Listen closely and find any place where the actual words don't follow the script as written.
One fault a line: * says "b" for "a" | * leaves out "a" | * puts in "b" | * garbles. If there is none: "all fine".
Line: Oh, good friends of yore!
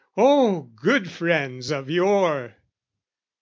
all fine